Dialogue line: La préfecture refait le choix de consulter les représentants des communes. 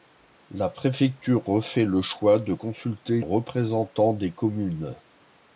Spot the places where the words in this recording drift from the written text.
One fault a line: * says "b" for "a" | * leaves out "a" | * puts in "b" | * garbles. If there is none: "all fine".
* leaves out "les"